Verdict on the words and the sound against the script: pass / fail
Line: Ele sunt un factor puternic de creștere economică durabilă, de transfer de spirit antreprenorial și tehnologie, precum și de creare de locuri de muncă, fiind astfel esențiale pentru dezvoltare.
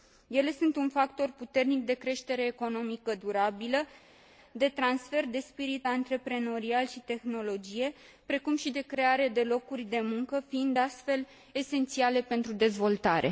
pass